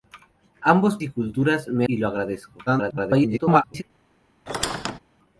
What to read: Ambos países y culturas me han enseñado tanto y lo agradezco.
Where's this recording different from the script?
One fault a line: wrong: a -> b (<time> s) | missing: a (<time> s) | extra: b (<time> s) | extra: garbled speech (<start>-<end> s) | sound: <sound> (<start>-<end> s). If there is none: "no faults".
missing: países (1.0 s)
missing: han enseñado tanto (1.9 s)
extra: garbled speech (2.7-3.8 s)
sound: squeak (4.5-5.0 s)